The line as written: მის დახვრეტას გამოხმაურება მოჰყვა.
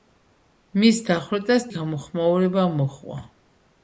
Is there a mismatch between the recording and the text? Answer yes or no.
no